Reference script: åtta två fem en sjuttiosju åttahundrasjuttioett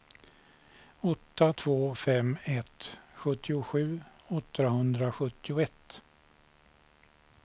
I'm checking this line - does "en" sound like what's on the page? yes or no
no